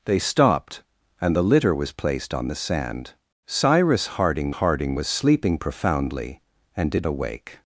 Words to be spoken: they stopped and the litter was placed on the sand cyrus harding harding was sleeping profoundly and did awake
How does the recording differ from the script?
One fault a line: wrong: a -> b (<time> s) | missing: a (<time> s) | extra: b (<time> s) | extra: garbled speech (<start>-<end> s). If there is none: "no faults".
no faults